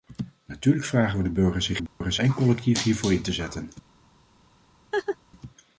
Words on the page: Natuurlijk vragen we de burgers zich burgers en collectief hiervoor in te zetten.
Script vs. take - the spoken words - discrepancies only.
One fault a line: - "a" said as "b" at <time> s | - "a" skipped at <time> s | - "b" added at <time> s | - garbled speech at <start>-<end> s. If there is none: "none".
none